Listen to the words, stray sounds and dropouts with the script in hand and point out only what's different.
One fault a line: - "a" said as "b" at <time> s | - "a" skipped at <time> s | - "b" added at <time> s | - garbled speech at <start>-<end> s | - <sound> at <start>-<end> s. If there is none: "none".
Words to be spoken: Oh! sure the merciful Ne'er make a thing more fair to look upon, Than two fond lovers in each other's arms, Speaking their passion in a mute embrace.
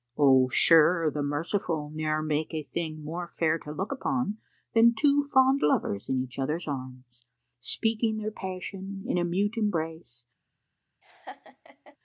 - laugh at 11.0-12.0 s